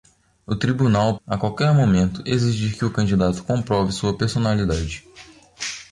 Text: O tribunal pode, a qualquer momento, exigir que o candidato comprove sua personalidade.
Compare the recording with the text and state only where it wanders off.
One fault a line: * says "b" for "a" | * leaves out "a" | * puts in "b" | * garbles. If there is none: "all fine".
* leaves out "pode"